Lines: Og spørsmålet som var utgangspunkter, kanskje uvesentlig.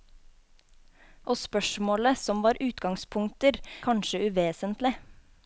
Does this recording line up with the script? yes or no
yes